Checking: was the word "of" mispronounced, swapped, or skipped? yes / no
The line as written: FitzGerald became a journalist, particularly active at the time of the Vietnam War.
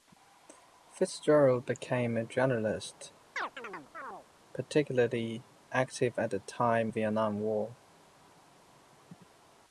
yes